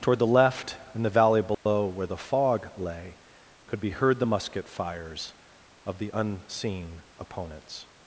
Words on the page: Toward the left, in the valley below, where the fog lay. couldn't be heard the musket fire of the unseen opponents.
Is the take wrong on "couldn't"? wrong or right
wrong